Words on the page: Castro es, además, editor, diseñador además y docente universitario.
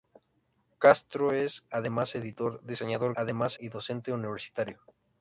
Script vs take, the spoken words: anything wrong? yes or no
no